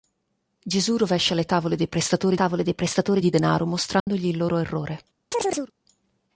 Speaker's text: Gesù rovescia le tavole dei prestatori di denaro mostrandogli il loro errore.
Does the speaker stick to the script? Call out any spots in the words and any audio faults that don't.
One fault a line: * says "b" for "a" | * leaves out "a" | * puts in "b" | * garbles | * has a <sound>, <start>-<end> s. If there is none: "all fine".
* puts in "tavole dei prestatori"
* has a dropout, 4.0-4.1 s
* has a chirp, 5.3-5.7 s